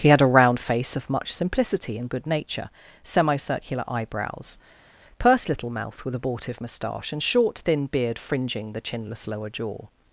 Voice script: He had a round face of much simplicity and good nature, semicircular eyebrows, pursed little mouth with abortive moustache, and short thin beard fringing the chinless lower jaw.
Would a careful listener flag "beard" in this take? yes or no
no